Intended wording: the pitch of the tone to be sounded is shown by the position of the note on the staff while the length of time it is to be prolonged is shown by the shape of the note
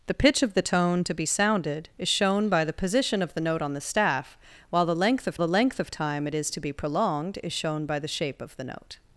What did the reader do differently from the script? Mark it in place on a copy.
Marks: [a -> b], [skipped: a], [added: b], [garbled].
the pitch of the tone to be sounded is shown by the position of the note on the staff while the length of [added: the length of] time it is to be prolonged is shown by the shape of the note